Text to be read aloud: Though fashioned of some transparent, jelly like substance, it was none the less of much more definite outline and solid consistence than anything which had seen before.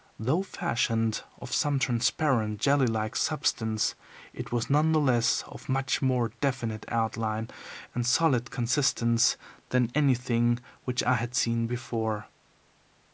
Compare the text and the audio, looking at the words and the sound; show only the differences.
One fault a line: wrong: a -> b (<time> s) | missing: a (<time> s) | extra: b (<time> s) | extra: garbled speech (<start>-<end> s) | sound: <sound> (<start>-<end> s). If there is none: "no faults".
extra: I (11.0 s)